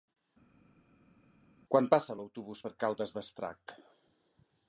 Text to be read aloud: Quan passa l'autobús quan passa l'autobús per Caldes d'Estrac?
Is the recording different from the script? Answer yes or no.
yes